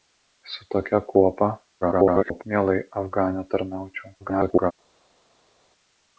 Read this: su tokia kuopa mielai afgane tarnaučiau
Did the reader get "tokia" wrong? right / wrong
right